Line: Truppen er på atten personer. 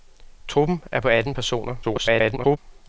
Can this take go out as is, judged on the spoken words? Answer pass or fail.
fail